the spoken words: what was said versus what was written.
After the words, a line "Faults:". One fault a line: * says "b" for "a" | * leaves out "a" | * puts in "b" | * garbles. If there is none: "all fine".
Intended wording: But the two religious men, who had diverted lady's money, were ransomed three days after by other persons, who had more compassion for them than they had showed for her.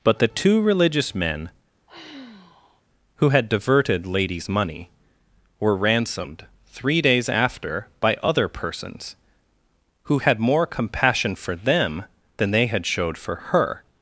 But the two religious men, who had diverted lady's money, were ransomed three days after by other persons, who had more compassion for them than they had showed for her.
Faults:
all fine